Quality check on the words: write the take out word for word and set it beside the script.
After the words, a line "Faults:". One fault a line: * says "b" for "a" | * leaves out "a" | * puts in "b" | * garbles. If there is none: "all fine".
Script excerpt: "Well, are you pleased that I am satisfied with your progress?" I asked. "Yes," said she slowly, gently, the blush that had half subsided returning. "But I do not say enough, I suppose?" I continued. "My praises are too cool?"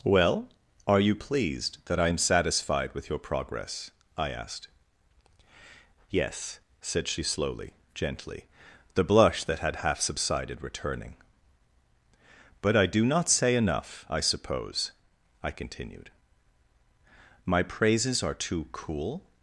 "Well, are you pleased that I am satisfied with your progress?" I asked. "Yes," said she slowly, gently, the blush that had half subsided returning. "But I do not say enough, I suppose?" I continued. "My praises are too cool?"
Faults:
all fine